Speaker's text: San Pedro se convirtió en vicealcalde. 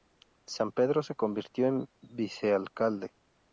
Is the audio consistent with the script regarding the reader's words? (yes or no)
yes